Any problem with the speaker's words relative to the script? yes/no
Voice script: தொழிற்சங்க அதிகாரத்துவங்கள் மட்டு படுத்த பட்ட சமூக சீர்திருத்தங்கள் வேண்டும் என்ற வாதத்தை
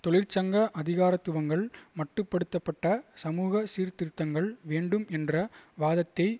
no